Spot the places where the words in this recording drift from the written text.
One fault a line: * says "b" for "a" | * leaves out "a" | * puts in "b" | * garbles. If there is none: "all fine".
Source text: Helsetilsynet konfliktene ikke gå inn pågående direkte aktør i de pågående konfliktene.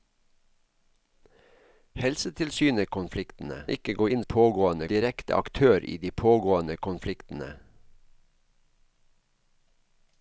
all fine